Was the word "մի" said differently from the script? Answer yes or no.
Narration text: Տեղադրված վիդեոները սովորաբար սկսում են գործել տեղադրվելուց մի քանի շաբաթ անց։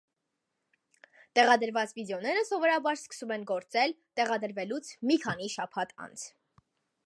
no